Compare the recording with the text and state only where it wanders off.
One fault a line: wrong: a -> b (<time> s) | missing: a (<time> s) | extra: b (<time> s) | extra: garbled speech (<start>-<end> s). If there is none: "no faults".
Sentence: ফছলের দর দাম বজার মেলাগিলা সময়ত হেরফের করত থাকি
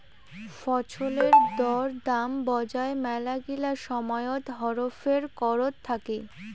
no faults